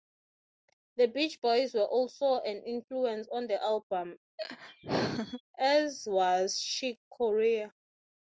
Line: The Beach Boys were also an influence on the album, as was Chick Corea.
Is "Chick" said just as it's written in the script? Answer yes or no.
yes